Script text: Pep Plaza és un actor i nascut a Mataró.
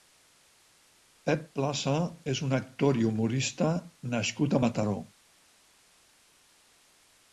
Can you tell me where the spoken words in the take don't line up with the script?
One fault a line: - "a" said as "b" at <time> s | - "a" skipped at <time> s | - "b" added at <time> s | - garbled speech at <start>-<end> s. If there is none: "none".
- "humorista" added at 3.1 s